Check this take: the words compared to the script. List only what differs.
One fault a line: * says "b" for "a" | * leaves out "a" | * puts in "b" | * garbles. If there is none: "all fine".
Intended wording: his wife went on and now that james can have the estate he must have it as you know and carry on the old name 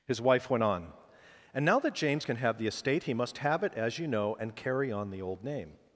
all fine